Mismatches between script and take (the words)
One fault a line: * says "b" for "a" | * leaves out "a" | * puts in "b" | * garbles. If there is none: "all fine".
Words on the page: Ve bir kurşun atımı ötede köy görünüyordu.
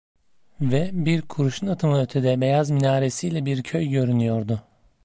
* puts in "beyaz minaresiyle bir"